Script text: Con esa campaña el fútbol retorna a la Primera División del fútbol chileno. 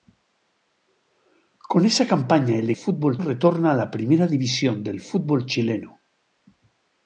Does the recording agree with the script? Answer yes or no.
yes